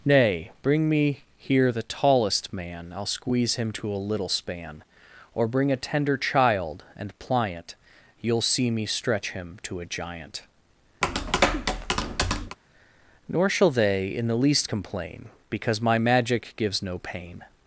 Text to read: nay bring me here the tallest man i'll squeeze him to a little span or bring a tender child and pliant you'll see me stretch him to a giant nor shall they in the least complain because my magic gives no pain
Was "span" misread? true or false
false